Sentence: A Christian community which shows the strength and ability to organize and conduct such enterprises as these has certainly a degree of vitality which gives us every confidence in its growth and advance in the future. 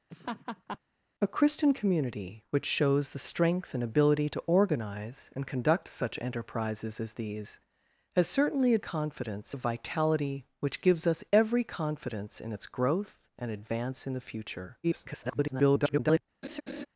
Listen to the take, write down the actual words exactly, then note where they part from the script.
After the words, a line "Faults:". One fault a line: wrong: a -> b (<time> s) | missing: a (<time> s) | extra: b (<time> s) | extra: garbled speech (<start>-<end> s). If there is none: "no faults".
A Christian community which shows the strength and ability to organize and conduct such enterprises as these has certainly a confidence of vitality which gives us every confidence in its growth and advance in the future. [garbled]
Faults:
wrong: degree -> confidence (8.8 s)
extra: garbled speech (14.8-16.2 s)